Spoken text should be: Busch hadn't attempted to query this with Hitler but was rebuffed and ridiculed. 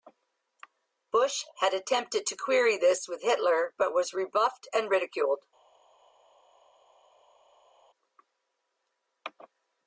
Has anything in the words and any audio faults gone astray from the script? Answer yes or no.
yes